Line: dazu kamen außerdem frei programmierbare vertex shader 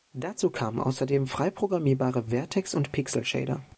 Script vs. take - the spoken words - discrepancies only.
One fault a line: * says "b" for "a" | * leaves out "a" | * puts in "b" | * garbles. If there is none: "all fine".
* puts in "und pixel"